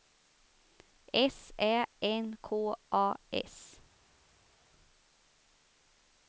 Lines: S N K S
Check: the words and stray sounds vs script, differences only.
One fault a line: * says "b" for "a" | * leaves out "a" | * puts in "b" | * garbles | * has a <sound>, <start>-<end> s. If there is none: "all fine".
* puts in "Ä"
* puts in "A"